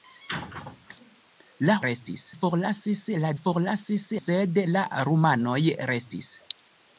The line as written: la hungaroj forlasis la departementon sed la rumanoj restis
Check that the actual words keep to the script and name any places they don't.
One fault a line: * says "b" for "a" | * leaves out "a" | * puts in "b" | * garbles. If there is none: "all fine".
* says "restis" for "hungaroj"
* says "forlasis" for "departementon"